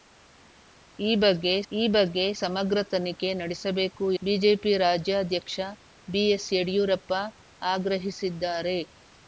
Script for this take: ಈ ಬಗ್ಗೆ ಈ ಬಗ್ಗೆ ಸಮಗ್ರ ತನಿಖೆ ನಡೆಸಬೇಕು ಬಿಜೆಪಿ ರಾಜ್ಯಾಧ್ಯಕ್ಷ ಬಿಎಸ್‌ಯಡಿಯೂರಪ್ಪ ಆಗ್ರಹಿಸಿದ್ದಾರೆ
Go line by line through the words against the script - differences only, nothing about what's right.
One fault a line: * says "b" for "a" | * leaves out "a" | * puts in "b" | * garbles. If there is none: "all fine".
all fine